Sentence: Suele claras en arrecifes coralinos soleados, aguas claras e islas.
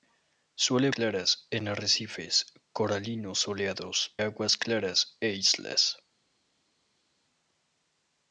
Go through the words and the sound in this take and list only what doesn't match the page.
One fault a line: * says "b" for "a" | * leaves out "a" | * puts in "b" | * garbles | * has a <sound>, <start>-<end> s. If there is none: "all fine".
all fine